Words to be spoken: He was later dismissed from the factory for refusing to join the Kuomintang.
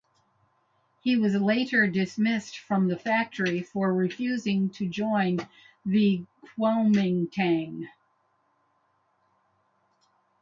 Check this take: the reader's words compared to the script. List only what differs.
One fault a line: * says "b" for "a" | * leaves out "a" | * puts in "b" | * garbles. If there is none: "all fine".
all fine